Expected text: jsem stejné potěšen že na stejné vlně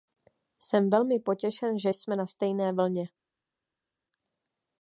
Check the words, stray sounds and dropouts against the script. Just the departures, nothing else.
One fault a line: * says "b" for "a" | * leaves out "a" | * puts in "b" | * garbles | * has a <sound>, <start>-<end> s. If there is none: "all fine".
* says "velmi" for "stejné"
* puts in "jsme"